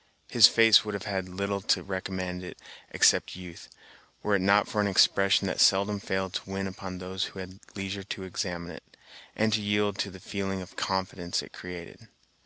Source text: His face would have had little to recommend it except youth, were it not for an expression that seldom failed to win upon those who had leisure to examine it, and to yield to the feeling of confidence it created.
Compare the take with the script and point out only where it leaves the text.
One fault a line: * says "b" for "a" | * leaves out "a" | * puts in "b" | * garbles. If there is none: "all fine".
all fine